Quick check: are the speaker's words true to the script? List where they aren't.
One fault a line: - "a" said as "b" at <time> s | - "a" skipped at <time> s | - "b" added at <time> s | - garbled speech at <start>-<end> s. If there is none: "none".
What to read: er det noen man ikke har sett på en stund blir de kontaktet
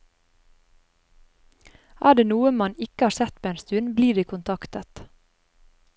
none